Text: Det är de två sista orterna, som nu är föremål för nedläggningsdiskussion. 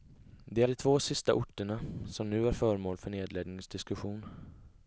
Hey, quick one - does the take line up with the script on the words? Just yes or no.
no